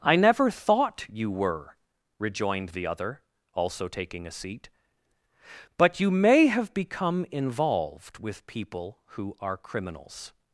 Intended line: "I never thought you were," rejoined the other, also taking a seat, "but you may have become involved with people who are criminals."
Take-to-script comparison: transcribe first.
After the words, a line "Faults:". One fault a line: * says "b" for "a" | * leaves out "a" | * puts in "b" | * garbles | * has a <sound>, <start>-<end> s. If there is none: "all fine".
"I never thought you were," rejoined the other, also taking a seat, "but you may have become involved with people who are criminals."
Faults:
all fine